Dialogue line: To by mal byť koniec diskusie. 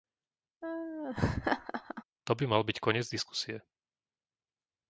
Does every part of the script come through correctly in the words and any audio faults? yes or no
no